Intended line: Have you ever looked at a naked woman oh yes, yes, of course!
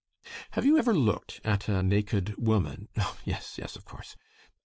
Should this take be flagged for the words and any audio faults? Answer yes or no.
no